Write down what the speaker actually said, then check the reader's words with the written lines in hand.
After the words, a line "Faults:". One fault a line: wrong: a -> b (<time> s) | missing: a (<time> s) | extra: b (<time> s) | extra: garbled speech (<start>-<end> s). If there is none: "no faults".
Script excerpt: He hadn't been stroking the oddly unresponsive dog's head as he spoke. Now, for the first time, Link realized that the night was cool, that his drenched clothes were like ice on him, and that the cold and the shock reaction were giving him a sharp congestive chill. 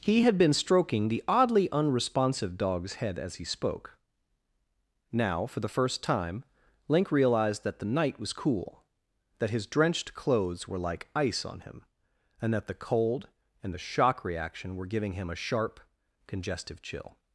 He had been stroking the oddly unresponsive dog's head as he spoke. Now, for the first time, Link realized that the night was cool, that his drenched clothes were like ice on him, and that the cold and the shock reaction were giving him a sharp congestive chill.
Faults:
wrong: hadn't -> had (0.2 s)